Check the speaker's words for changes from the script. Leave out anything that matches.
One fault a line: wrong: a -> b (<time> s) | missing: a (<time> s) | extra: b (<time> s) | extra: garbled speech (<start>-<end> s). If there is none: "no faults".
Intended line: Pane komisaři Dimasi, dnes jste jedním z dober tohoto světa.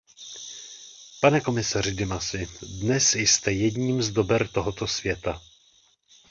no faults